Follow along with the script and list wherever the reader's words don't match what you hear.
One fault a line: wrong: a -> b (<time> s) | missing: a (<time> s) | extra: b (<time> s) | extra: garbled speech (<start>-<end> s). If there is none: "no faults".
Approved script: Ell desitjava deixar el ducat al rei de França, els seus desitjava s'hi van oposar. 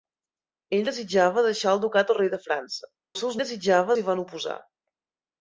no faults